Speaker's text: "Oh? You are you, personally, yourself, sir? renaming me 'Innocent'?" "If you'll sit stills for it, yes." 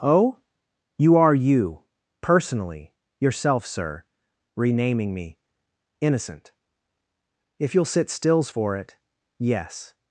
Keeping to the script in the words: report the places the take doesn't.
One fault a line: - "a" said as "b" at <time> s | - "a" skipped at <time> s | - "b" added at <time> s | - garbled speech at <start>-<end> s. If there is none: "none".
none